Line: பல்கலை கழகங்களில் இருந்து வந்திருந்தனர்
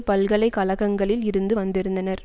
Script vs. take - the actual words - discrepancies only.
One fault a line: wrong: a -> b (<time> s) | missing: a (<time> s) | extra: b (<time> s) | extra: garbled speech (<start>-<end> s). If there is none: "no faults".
no faults